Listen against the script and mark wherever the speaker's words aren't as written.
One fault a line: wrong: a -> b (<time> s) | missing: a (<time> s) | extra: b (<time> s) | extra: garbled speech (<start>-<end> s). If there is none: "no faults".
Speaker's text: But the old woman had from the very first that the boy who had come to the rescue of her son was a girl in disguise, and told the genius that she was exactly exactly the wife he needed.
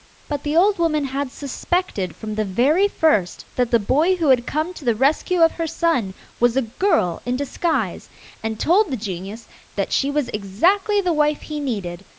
extra: suspected (1.3 s)
missing: exactly (11.0 s)